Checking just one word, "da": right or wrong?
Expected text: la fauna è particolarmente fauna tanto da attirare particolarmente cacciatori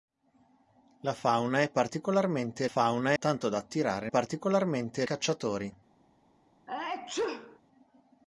right